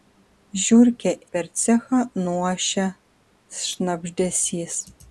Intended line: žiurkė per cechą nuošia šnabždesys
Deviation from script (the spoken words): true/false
false